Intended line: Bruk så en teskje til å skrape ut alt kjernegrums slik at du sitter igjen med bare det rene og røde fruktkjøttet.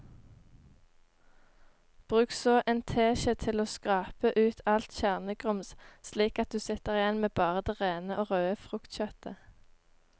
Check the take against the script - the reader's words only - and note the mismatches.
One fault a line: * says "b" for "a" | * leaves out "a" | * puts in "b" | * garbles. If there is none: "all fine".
all fine